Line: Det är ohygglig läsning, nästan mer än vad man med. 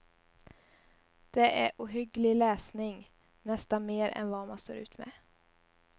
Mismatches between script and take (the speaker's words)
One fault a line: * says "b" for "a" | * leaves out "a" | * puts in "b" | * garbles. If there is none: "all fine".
* puts in "står ut"